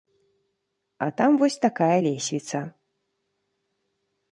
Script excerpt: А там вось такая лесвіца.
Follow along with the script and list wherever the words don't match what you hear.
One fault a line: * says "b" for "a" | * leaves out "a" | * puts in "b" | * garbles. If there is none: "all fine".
all fine